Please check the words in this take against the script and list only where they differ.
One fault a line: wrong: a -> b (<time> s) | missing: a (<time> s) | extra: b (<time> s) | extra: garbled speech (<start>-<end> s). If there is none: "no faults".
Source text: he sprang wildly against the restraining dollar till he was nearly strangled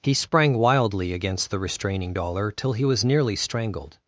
no faults